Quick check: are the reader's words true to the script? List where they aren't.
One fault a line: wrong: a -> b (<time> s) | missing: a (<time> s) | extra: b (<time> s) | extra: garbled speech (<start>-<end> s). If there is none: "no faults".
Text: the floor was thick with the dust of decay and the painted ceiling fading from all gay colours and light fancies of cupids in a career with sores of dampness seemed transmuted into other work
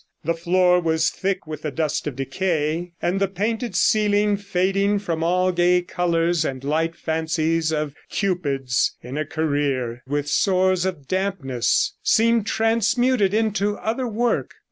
no faults